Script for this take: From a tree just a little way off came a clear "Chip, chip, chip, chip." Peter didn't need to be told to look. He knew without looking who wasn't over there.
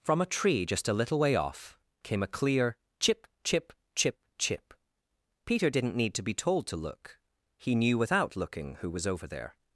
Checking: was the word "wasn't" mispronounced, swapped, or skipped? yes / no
yes